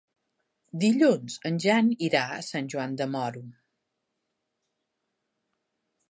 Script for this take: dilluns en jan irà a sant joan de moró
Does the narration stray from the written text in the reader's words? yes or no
no